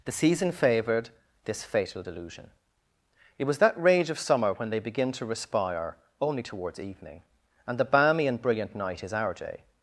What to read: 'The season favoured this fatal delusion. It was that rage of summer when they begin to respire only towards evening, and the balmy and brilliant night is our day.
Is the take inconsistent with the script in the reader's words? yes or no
no